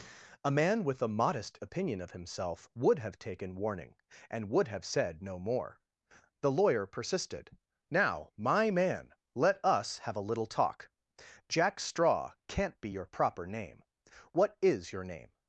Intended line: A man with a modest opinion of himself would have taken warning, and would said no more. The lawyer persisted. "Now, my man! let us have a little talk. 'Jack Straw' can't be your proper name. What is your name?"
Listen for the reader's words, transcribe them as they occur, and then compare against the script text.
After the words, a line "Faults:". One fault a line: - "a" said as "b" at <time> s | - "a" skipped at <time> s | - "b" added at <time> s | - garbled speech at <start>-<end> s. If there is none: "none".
A man with a modest opinion of himself would have taken warning, and would have said no more. The lawyer persisted. "Now, my man! let us have a little talk. 'Jack Straw' can't be your proper name. What is your name?"
Faults:
- "have" added at 4.7 s